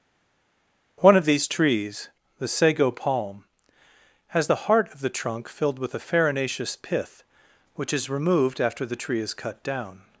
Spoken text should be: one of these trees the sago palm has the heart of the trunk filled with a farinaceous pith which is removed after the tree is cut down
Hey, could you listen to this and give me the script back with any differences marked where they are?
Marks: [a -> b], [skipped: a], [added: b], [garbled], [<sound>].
one of these trees the sago palm has the heart of the trunk filled with a farinaceous pith which is removed after the tree is cut down